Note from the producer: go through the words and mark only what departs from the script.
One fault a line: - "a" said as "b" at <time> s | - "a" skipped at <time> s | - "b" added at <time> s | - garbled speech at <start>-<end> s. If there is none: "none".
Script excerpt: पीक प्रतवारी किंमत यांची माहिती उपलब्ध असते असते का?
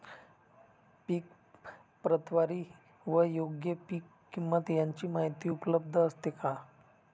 - "व योग्य पीक" added at 3.0 s
- "असते" skipped at 6.3 s